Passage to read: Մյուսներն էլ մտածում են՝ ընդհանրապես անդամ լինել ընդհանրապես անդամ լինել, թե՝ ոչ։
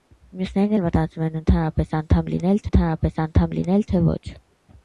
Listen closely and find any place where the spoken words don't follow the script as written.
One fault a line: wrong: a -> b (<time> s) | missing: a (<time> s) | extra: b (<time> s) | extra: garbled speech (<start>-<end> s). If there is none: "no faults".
no faults